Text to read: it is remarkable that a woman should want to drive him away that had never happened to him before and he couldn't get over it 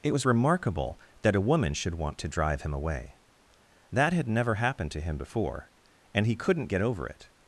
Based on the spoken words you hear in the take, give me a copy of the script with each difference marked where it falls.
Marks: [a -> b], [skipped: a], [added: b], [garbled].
it [is -> was] remarkable that a woman should want to drive him away that had never happened to him before and he couldn't get over it